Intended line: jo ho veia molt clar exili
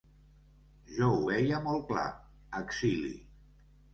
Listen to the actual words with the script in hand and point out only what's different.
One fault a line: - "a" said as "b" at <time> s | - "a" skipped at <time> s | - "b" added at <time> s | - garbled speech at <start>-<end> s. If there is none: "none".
none